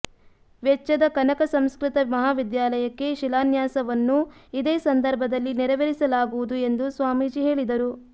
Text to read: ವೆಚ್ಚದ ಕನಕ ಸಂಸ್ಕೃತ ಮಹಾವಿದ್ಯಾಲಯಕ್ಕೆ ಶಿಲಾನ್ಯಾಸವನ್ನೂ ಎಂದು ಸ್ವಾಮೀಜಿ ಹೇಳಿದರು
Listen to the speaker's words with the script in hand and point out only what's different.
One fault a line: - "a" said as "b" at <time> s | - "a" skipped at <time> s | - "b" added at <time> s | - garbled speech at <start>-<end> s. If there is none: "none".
- "ಇದೇ ಸಂದರ್ಭದಲ್ಲಿ ನೆರವೇರಿಸಲಾಗುವುದು" added at 4.5 s